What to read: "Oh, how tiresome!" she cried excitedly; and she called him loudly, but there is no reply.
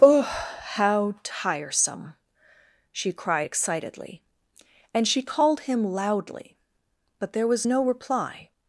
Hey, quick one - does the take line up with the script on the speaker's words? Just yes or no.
no